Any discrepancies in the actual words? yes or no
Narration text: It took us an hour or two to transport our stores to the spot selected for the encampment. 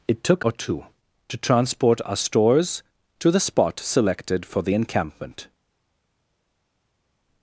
yes